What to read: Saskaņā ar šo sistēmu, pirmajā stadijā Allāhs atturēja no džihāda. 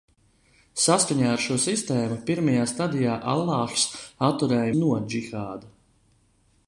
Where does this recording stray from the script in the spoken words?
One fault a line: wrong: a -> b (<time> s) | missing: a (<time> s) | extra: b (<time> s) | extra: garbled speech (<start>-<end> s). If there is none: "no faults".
no faults